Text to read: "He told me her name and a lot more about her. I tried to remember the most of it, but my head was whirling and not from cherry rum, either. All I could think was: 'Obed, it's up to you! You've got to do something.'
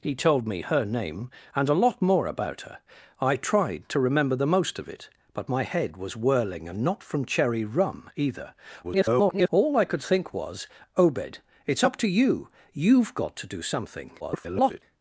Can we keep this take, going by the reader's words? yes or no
no